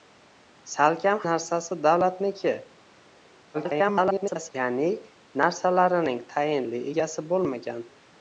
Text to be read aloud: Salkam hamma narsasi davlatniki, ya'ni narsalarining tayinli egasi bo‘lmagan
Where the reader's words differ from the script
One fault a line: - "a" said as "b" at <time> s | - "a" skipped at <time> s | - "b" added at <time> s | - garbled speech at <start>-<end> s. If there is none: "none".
- "hamma" skipped at 1.2 s
- garbled speech at 3.5-4.5 s